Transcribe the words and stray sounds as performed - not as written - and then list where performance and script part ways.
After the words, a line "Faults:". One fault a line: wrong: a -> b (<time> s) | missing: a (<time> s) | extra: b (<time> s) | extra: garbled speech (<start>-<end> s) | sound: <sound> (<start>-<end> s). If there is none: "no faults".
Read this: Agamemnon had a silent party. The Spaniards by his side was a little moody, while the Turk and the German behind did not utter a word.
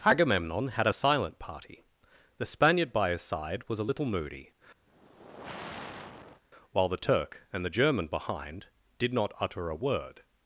Agamemnon had a silent party. The Spaniard by his side was a little moody, while the Turk and the German behind did not utter a word.
Faults:
wrong: Spaniards -> Spaniard (2.4 s)
sound: sigh (4.9-6.4 s)